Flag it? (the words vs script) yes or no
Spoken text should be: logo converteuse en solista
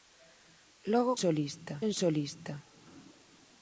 yes